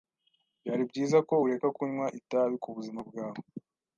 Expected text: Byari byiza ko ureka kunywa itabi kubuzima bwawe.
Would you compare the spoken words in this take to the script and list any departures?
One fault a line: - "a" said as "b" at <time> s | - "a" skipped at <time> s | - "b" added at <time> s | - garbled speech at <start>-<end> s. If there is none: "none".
none